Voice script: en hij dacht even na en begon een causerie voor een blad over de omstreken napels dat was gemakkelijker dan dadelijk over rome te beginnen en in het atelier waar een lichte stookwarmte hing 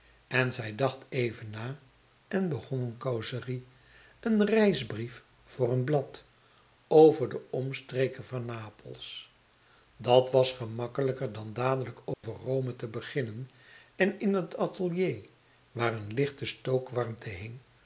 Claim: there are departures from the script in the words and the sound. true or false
true